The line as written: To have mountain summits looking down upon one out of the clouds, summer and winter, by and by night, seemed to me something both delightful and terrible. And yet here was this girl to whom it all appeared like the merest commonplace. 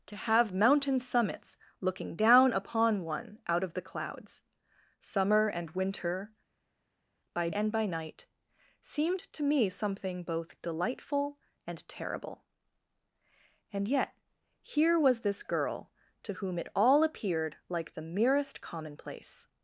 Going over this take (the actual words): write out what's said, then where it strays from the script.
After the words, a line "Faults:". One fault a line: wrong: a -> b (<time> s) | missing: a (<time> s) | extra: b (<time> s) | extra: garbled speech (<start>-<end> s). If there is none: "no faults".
To have mountain summits looking down upon one out of the clouds, summer and winter, by and by night, seemed to me something both delightful and terrible. And yet here was this girl to whom it all appeared like the merest commonplace.
Faults:
no faults